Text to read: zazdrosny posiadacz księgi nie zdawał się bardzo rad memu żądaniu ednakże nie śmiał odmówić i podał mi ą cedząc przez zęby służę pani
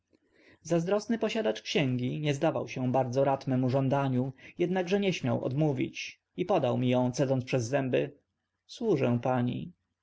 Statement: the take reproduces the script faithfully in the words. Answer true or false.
true